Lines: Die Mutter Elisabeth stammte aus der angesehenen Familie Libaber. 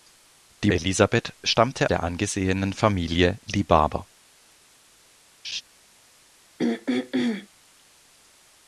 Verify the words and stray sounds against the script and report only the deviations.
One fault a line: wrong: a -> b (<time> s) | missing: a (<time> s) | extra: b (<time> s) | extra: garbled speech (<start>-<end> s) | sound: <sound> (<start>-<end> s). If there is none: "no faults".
missing: Mutter (0.7 s)
missing: aus (1.9 s)
sound: laugh (5.4-5.6 s)
sound: throat clearing (6.6-7.5 s)